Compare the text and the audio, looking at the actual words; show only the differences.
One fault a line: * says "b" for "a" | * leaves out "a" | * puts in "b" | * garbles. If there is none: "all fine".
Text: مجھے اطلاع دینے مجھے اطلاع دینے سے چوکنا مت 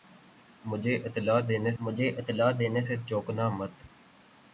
all fine